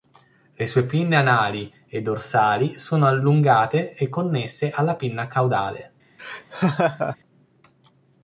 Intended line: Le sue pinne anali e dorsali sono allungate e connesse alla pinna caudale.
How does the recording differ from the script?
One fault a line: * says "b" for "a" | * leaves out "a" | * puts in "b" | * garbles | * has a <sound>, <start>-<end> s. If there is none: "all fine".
* has a laugh, 6.2-7.2 s